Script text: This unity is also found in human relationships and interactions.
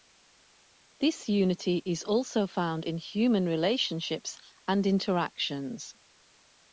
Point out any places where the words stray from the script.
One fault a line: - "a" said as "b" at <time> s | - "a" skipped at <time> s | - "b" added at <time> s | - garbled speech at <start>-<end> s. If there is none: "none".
none